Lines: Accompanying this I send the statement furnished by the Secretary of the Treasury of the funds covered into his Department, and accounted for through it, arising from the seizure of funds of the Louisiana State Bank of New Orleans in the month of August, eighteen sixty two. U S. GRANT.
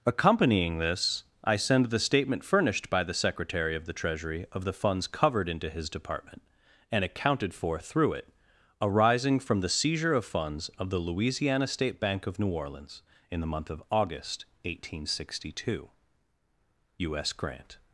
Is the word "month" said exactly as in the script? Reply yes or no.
yes